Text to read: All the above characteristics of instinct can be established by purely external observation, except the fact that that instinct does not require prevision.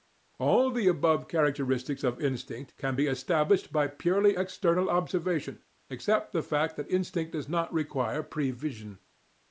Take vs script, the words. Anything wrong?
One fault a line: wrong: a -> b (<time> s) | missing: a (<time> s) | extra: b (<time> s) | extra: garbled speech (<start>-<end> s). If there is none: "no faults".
missing: that (6.9 s)